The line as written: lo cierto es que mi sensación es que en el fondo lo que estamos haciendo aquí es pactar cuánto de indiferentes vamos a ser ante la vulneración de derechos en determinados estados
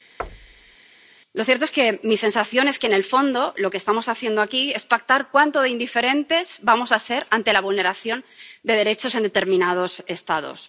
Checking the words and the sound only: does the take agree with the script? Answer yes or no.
no